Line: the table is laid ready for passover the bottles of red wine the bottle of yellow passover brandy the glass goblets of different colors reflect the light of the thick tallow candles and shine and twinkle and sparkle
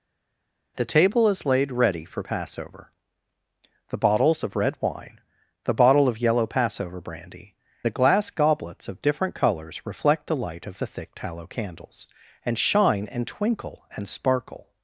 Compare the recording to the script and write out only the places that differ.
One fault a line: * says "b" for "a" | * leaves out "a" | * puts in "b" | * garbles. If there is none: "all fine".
all fine